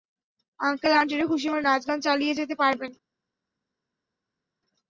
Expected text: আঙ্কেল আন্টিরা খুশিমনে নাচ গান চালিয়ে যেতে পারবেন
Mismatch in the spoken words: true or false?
false